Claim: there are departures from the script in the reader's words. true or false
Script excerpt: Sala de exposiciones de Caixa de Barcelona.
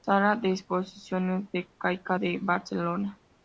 false